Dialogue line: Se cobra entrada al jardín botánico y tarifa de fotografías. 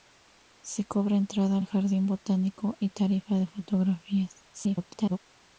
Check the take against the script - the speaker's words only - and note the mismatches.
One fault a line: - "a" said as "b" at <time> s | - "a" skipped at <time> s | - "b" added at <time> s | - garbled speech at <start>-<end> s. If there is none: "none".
- garbled speech at 4.5-5.2 s